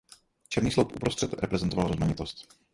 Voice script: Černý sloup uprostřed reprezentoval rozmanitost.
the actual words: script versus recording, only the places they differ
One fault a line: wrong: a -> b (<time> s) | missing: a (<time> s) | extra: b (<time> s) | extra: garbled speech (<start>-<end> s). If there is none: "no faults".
no faults